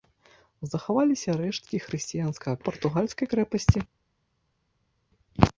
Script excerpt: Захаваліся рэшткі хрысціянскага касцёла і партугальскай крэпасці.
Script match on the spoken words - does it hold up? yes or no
no